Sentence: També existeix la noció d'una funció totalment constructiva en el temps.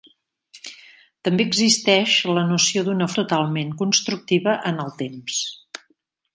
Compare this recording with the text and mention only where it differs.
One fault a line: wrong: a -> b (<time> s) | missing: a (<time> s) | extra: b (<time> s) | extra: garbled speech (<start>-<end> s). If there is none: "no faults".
missing: funció (3.1 s)